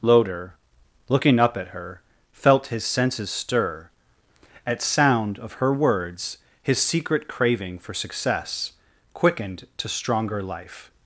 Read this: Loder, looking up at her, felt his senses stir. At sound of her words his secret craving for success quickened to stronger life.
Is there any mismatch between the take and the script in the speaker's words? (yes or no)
no